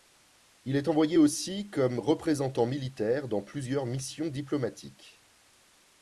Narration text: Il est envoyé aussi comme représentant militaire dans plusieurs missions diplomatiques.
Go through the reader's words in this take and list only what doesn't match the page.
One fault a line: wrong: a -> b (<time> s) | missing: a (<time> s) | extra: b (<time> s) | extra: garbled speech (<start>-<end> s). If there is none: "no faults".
no faults